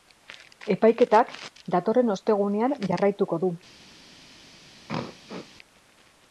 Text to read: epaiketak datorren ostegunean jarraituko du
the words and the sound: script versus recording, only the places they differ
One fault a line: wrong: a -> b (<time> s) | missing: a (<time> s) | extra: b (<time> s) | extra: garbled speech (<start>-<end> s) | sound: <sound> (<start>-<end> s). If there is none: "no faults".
sound: throat clearing (4.9-5.5 s)